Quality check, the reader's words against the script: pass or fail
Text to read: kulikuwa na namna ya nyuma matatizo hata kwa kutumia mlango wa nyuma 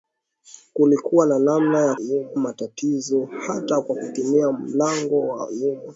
pass